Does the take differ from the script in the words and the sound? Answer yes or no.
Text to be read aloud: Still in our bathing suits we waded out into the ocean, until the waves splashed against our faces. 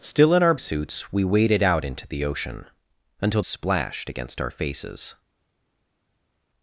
yes